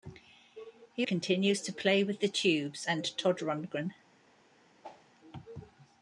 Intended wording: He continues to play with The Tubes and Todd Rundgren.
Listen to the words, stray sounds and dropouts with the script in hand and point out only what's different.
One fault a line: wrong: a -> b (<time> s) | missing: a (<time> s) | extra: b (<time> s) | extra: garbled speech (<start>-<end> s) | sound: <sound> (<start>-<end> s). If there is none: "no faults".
sound: whoosh (4.8-5.1 s)